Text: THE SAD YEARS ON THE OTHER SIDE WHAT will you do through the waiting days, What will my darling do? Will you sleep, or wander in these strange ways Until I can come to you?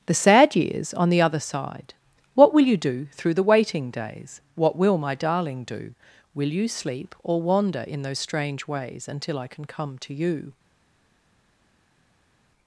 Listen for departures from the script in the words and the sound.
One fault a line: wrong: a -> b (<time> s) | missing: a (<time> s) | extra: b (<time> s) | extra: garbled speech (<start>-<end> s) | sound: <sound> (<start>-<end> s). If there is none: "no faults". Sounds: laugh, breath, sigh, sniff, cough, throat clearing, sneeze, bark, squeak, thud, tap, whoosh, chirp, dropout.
wrong: these -> those (8.0 s)